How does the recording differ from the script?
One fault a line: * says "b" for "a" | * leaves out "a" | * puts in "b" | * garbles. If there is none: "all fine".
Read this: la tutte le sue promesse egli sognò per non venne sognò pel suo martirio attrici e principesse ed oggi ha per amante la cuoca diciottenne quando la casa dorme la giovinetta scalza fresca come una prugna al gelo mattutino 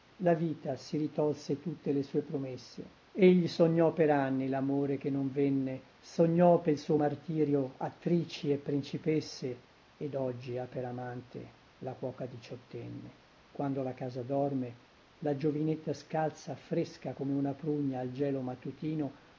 * puts in "vita si ritolse"
* puts in "anni lamore che"